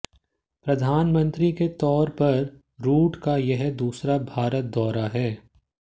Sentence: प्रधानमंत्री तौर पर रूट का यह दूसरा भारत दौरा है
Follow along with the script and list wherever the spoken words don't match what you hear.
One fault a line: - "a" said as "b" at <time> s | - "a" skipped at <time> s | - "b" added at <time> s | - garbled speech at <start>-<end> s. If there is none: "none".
- "के" added at 1.5 s